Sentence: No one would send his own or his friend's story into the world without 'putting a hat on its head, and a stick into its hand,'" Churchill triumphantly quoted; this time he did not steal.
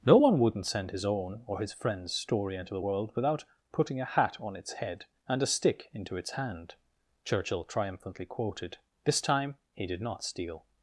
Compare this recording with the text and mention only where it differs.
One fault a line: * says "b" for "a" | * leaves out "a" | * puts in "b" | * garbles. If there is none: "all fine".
* says "wouldn't" for "would"